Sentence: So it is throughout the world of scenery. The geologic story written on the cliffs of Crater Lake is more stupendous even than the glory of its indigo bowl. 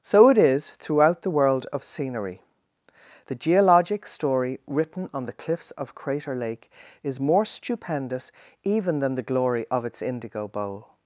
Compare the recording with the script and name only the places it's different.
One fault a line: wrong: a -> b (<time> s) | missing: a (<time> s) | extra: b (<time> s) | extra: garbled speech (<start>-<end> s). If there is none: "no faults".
no faults